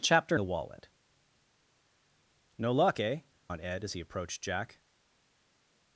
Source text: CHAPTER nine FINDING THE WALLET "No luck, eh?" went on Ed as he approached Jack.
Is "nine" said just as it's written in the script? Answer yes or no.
no